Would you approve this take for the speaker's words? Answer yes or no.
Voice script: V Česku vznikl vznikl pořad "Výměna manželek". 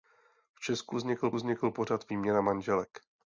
yes